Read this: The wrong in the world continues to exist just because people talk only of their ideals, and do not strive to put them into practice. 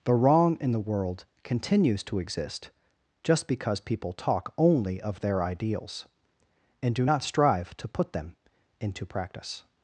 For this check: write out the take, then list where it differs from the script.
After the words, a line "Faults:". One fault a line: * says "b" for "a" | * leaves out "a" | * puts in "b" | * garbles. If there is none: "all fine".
The wrong in the world continues to exist just because people talk only of their ideals, and do not strive to put them into practice.
Faults:
all fine